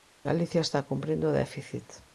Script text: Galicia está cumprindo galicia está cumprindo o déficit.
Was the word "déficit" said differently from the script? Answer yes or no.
no